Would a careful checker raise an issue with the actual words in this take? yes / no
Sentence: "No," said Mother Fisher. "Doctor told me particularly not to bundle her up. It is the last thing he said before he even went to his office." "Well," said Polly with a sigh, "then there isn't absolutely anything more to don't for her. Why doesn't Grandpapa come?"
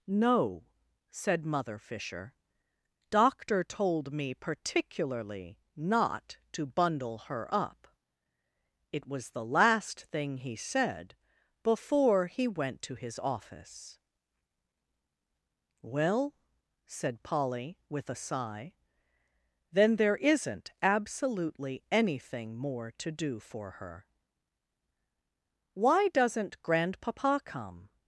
yes